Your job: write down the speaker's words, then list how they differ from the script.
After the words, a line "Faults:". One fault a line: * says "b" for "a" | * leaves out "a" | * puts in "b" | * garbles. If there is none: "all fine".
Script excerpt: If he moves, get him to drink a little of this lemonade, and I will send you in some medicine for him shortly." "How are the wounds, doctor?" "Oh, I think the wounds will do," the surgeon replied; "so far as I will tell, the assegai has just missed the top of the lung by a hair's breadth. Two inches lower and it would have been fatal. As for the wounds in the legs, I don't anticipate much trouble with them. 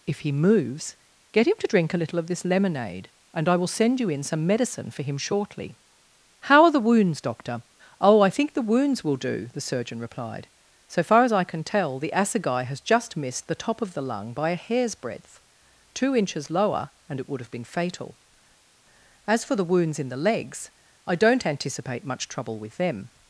If he moves, get him to drink a little of this lemonade, and I will send you in some medicine for him shortly." "How are the wounds, doctor?" "Oh, I think the wounds will do," the surgeon replied; "so far as I can tell, the assegai has just missed the top of the lung by a hair's breadth. Two inches lower and it would have been fatal. As for the wounds in the legs, I don't anticipate much trouble with them.
Faults:
* says "can" for "will"